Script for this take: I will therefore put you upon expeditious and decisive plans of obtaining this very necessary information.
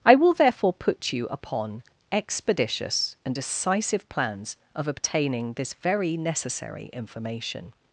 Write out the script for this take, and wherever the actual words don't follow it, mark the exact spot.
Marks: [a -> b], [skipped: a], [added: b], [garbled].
I will therefore put you upon expeditious and decisive plans of obtaining this very necessary information.